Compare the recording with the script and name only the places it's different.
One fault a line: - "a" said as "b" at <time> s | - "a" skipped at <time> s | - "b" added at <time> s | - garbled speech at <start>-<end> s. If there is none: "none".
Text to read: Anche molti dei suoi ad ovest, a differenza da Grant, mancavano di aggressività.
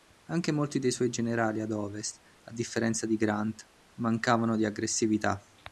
- "generali" added at 1.1 s
- "da" said as "di" at 3.0 s